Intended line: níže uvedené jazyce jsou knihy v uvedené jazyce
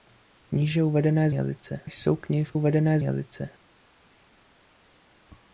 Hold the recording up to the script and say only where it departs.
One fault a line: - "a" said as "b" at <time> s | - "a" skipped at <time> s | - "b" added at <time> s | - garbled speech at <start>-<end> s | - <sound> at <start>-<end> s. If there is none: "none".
none